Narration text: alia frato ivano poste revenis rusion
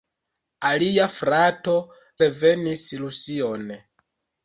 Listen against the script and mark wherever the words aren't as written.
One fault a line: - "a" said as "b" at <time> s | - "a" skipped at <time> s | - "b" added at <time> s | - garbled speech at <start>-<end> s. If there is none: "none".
- "ivano poste" skipped at 1.8 s